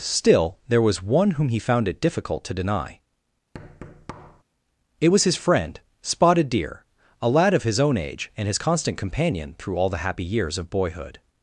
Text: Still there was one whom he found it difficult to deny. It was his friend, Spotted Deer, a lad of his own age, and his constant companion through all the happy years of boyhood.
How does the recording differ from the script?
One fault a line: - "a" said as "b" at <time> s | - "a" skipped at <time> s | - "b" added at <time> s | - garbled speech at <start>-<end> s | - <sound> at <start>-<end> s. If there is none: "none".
- thud at 3.5-4.4 s